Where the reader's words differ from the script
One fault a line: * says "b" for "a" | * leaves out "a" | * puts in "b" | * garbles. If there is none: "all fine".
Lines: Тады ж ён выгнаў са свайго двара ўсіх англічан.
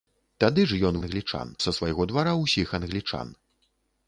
* says "англічан" for "выгнаў"